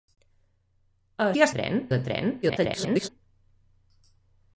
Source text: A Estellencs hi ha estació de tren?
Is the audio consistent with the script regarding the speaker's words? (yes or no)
no